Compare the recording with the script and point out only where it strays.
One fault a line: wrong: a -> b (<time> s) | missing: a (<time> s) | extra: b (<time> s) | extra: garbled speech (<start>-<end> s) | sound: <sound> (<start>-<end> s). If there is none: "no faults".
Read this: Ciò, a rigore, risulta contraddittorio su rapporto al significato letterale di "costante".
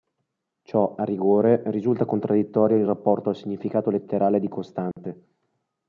wrong: su -> in (2.8 s)
sound: dropout (4.9-5.0 s)